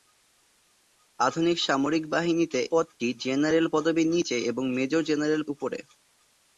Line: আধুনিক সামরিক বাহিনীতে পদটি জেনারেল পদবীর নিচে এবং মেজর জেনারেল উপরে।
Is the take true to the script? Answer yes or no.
yes